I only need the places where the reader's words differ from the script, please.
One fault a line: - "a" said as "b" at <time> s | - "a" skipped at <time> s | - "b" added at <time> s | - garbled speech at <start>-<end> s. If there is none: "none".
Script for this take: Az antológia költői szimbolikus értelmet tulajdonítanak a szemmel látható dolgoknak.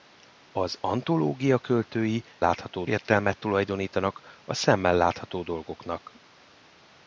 - "szimbolikus" said as "látható" at 2.4 s